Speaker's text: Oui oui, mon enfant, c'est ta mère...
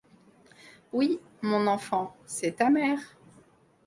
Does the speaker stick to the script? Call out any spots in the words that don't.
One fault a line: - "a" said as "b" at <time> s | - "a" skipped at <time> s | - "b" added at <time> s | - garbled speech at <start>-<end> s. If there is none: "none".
- "oui" skipped at 1.2 s